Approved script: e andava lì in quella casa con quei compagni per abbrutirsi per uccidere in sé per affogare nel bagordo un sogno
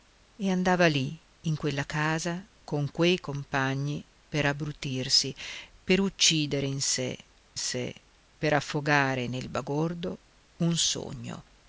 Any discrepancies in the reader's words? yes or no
yes